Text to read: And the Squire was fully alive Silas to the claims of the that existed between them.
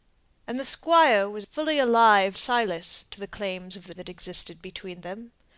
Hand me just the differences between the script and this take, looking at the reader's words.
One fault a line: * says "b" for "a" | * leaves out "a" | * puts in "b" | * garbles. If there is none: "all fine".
all fine